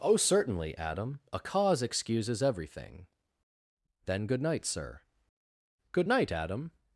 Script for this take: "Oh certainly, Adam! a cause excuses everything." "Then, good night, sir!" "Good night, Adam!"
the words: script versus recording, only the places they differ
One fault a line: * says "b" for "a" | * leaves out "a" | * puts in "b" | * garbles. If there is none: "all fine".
all fine